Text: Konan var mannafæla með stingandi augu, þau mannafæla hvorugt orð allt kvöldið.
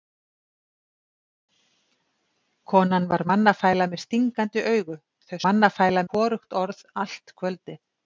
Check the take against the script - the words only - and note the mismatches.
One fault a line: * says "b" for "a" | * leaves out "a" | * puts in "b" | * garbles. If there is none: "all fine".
all fine